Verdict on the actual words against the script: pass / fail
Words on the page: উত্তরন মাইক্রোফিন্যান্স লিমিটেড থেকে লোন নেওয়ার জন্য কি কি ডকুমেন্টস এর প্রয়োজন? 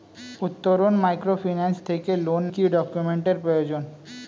fail